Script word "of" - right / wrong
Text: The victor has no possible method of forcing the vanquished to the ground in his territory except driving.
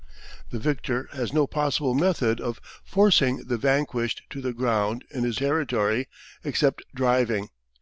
right